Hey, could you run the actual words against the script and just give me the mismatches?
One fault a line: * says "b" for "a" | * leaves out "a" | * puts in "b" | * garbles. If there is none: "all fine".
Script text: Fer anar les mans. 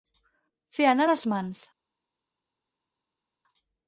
all fine